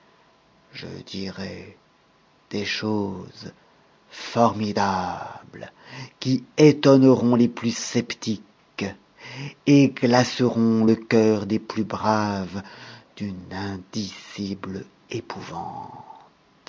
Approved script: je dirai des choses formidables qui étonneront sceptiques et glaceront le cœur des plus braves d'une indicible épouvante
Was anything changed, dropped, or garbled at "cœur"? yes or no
no